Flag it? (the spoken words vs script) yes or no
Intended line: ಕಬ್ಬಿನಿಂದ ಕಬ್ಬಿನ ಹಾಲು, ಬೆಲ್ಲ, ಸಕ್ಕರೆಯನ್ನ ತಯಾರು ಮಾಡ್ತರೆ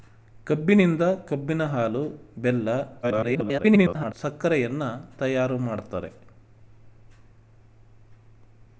yes